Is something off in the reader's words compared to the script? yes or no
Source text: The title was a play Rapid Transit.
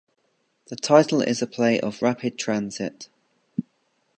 yes